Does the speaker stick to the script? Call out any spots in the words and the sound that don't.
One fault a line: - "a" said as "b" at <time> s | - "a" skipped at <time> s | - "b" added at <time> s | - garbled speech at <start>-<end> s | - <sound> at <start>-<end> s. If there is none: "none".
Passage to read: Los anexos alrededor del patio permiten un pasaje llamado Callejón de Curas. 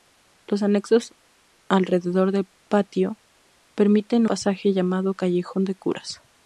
- "un" skipped at 4.2 s